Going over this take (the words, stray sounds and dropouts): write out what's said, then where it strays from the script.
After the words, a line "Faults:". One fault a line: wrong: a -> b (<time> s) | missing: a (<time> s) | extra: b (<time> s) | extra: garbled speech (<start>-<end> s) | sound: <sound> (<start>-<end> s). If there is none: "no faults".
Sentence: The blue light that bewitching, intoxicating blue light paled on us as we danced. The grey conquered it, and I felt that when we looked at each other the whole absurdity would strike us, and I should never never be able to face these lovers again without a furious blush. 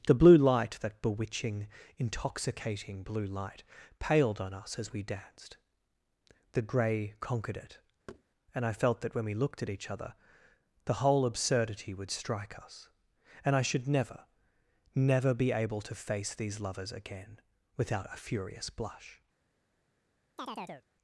The blue light that bewitching, intoxicating blue light paled on us as we danced. The grey conquered it, and I felt that when we looked at each other the whole absurdity would strike us, and I should never never be able to face these lovers again without a furious blush.
Faults:
sound: thud (8.1-8.2 s)
sound: chirp (20.4-20.9 s)